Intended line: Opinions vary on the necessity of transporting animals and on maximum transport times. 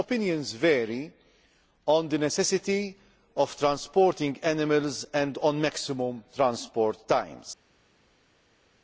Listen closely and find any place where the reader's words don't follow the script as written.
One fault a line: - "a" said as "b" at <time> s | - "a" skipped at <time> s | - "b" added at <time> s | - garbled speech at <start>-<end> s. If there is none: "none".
none